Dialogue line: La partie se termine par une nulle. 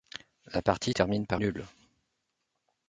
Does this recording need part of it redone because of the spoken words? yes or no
yes